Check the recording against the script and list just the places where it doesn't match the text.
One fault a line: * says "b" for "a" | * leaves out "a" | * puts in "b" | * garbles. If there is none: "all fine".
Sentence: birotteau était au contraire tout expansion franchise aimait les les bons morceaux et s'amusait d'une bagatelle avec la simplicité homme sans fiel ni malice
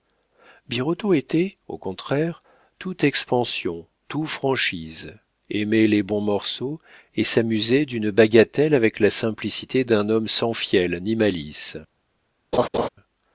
* puts in "tout"
* leaves out "les"
* puts in "d'un"